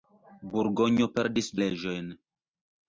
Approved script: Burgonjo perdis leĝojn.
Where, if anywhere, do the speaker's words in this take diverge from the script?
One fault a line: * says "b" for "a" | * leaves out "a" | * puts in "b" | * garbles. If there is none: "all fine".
all fine